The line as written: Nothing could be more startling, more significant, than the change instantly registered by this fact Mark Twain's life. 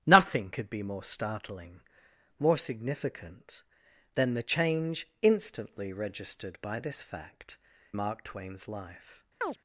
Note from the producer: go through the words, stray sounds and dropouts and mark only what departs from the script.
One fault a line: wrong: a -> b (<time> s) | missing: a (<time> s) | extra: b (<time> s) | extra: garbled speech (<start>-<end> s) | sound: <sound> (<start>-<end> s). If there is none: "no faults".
sound: chirp (9.4-9.6 s)